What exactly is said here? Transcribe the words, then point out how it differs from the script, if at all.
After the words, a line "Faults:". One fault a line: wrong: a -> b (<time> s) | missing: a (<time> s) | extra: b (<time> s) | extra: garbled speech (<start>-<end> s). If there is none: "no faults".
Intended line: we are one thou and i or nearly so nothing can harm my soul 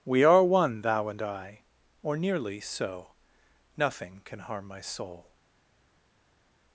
we are one thou and i or nearly so nothing can harm my soul
Faults:
no faults